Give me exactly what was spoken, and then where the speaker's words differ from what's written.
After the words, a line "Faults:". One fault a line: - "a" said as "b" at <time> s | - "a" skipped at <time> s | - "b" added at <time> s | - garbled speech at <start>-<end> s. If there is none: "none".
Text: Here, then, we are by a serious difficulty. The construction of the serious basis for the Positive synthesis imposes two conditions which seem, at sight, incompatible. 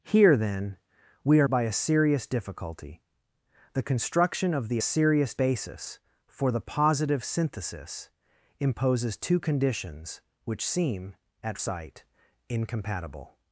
Here, then, we are by a serious difficulty. The construction of the serious basis for the Positive synthesis imposes two conditions which seem, at sight, incompatible.
Faults:
none